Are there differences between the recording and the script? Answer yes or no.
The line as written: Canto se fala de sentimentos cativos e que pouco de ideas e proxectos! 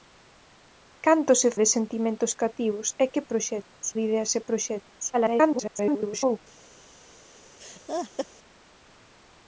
yes